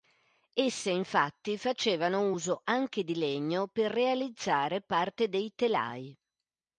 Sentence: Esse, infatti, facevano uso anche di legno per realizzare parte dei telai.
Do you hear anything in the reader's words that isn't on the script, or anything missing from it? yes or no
no